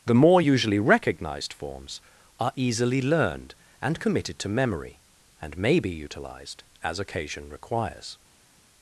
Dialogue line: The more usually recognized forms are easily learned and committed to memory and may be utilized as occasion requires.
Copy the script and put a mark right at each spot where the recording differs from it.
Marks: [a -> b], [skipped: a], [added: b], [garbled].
The more usually recognized forms are easily learned and committed to memory and may be utilized as occasion requires.